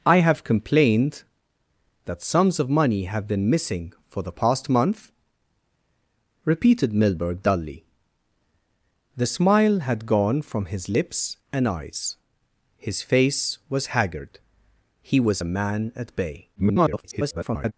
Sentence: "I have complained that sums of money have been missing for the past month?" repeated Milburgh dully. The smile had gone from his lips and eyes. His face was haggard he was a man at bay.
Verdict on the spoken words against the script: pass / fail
fail